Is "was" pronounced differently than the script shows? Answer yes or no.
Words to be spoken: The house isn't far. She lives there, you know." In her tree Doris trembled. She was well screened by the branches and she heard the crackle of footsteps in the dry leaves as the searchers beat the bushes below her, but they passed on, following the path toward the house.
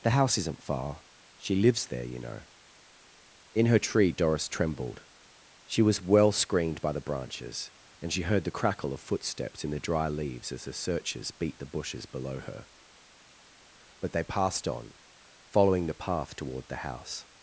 no